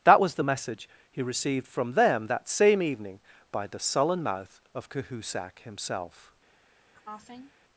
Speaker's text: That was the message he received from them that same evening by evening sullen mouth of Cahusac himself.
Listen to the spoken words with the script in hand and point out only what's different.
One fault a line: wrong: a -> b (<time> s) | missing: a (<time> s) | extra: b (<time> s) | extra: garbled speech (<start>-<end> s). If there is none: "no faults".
wrong: evening -> the (3.7 s)